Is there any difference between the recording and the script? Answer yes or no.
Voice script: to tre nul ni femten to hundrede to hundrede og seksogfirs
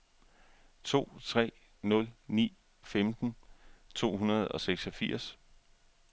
yes